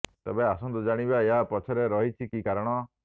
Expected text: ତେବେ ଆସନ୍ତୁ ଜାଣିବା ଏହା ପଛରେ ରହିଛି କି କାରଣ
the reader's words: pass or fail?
pass